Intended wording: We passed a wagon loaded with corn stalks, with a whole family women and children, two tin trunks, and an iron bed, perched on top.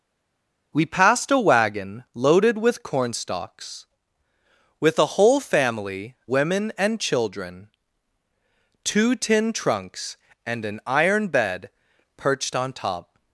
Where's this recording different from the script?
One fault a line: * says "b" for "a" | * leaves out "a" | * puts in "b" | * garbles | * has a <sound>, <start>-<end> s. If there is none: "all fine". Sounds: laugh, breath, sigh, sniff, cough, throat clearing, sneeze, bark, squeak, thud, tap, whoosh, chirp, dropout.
all fine